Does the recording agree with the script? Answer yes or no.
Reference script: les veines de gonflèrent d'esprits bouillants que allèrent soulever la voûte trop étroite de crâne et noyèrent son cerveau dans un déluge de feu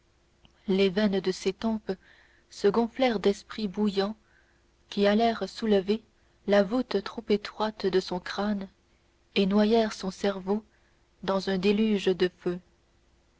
no